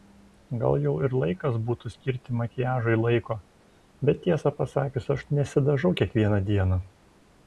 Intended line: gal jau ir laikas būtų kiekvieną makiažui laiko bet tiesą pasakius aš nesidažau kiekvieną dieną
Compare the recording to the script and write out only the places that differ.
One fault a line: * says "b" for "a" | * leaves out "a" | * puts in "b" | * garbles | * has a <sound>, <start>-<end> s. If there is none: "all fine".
* says "skirti" for "kiekvieną"